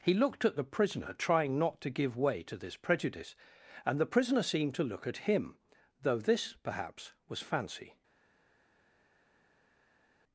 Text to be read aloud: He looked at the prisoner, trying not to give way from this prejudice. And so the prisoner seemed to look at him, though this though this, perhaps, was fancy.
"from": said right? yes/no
no